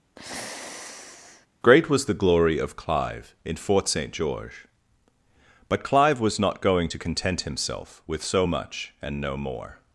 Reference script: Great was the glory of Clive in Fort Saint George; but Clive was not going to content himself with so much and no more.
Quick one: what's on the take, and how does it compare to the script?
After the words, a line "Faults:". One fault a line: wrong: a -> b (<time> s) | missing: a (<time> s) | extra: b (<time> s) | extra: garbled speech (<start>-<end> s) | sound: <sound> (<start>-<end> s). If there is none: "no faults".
Great was the glory of Clive in Fort Saint George; but Clive was not going to content himself with so much and no more.
Faults:
sound: sigh (0.2-1.5 s)